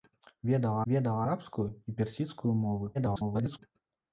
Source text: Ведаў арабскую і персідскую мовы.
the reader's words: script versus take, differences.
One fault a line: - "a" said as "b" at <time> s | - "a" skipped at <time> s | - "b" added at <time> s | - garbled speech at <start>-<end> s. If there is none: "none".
- "ведаў" added at 0.9 s
- garbled speech at 2.9-3.6 s